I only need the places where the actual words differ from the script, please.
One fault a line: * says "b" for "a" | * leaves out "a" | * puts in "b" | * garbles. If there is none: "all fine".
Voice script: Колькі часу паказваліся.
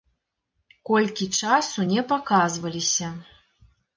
* puts in "не"